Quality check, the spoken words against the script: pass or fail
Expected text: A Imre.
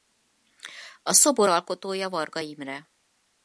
fail